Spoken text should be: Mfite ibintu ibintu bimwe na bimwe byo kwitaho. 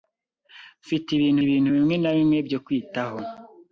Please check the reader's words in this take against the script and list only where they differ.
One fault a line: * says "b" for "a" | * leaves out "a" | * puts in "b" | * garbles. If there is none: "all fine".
all fine